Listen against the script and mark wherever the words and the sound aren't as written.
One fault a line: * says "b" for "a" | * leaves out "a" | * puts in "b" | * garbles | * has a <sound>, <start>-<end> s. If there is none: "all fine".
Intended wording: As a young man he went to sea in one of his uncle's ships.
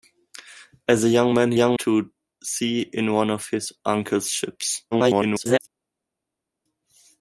* says "young" for "went"
* garbles